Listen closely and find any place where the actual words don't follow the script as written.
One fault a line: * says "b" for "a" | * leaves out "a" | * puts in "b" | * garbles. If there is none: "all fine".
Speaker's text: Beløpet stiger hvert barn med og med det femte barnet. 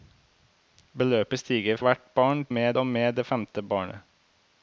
all fine